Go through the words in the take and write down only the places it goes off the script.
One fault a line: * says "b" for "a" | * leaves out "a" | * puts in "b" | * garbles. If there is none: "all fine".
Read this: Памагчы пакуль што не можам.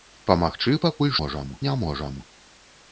* says "можам" for "што"